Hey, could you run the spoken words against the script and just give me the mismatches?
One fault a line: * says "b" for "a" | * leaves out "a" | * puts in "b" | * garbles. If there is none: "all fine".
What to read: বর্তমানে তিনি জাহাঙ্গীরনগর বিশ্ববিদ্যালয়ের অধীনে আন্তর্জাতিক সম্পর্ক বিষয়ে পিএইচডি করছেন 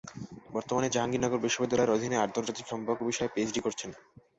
* leaves out "তিনি"